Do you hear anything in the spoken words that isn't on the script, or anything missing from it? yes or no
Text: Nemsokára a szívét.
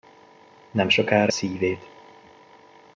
no